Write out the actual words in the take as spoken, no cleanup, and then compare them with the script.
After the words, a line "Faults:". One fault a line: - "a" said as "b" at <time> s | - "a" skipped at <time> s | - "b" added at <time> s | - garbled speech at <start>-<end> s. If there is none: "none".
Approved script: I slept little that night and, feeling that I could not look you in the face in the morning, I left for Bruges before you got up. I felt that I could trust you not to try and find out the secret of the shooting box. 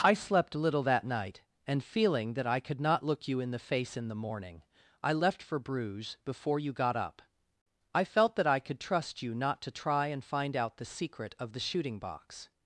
I slept little that night and, feeling that I could not look you in the face in the morning, I left for Bruges before you got up. I felt that I could trust you not to try and find out the secret of the shooting box.
Faults:
none